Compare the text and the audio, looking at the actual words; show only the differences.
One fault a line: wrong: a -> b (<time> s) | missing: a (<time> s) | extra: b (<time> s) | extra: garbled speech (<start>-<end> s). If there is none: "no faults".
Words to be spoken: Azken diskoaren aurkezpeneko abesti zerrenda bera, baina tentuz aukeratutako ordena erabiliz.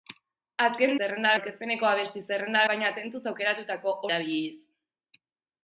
wrong: diskoaren -> zerrenda (1.0 s)
missing: bera (2.6 s)
missing: ordena (4.0 s)